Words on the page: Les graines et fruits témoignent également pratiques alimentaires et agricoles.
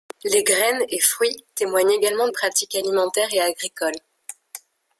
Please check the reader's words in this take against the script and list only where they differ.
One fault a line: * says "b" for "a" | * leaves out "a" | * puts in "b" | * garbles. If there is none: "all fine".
all fine